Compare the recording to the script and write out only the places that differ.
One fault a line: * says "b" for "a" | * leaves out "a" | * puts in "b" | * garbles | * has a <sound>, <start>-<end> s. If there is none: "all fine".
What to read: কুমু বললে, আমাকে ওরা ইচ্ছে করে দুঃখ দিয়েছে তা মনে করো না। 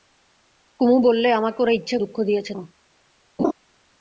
* leaves out "করে"
* leaves out "তা মনে করো"
* has a laugh, 3.4-3.5 s